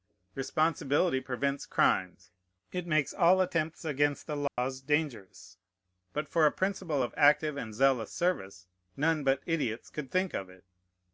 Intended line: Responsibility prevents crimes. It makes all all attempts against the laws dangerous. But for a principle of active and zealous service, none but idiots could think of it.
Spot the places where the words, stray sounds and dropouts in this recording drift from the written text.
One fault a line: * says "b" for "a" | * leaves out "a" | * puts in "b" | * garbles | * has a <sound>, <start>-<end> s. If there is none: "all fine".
* leaves out "all"
* has a dropout, 4.5-4.6 s